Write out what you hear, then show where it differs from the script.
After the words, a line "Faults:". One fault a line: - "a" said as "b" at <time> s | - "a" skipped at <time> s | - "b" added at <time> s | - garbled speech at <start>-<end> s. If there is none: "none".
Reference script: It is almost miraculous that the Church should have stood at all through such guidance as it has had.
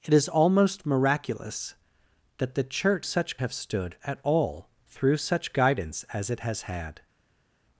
It is almost miraculous that the Church such have stood at all through such guidance as it has had.
Faults:
- "should" said as "such" at 3.0 s